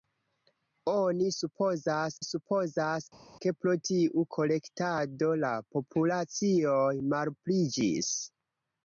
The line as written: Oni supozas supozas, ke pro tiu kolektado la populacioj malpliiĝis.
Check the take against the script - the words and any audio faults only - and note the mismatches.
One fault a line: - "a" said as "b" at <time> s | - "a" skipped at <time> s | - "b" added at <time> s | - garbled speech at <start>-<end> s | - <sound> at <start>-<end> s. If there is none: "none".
none